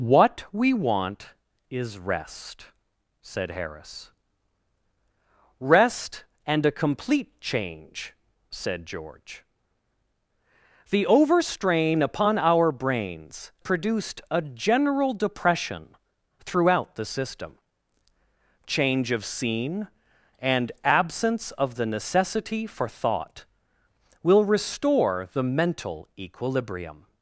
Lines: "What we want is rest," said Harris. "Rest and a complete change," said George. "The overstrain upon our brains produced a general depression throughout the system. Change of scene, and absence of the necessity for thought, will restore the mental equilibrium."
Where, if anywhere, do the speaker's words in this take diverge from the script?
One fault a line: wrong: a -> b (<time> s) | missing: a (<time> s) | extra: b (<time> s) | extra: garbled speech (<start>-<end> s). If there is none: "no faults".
no faults